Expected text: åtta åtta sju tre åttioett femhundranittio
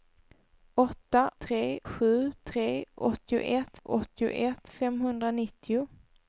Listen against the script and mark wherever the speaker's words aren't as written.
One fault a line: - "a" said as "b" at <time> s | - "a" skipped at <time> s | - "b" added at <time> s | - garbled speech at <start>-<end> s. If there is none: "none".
- "åtta" said as "tre" at 1.4 s
- "åttioett" added at 3.8 s